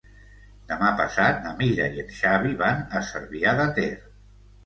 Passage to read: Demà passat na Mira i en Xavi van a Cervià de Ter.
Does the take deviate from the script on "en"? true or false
false